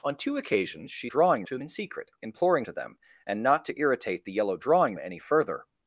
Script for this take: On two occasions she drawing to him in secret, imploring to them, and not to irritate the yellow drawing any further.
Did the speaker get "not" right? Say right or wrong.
right